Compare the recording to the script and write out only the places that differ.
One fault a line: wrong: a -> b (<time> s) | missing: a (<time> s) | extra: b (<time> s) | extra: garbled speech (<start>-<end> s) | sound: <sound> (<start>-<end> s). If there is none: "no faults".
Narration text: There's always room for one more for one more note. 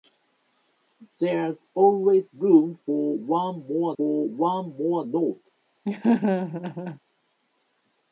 sound: laugh (5.8-7.0 s)